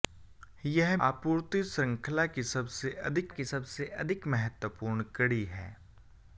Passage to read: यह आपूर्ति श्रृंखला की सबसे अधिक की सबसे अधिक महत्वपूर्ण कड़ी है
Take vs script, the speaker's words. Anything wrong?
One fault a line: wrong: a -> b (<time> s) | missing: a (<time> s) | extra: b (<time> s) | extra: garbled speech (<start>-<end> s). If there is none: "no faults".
no faults